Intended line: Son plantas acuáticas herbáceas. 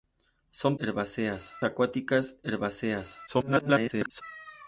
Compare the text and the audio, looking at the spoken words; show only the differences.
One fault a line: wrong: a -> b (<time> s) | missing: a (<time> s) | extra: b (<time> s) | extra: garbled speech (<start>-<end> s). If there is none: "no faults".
wrong: plantas -> herbáceas (0.8 s)
extra: garbled speech (3.3-4.2 s)